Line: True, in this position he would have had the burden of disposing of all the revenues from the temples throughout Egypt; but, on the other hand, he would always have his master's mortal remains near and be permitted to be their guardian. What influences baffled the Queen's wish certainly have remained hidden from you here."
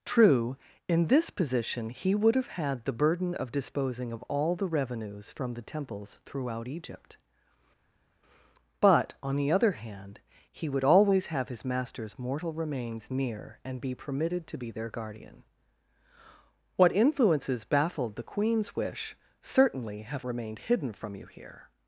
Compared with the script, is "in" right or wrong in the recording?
right